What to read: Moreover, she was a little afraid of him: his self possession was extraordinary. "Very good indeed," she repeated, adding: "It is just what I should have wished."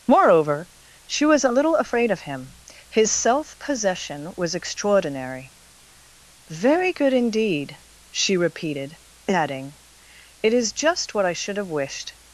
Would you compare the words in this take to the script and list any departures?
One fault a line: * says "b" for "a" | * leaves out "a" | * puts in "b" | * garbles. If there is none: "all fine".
all fine